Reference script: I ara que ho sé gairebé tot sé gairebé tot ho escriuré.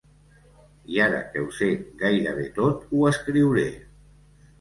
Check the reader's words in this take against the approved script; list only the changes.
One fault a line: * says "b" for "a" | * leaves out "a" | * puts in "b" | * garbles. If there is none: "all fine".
* leaves out "sé gairebé tot"